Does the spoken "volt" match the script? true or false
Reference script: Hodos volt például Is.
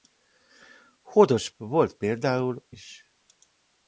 true